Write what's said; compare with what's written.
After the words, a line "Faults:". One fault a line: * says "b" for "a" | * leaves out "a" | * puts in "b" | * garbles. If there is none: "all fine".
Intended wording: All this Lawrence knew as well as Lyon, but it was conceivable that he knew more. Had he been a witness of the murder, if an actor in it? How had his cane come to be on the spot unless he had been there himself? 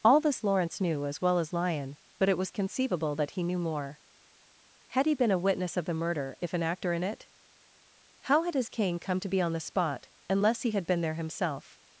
All this Lawrence knew as well as Lyon, but it was conceivable that he knew more. Had he been a witness of the murder, if an actor in it? How had his cane come to be on the spot unless he had been there himself?
Faults:
all fine